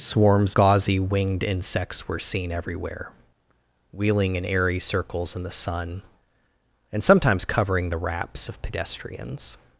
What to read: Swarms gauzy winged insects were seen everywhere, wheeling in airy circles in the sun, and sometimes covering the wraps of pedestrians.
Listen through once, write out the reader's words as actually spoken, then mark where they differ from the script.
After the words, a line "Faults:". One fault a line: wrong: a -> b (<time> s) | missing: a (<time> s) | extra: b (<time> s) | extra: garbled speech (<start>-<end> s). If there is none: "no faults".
Swarms gauzy winged insects were seen everywhere, wheeling in airy circles in the sun, and sometimes covering the wraps of pedestrians.
Faults:
no faults